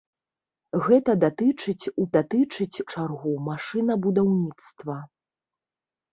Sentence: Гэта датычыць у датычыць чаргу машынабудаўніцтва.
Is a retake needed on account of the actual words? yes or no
no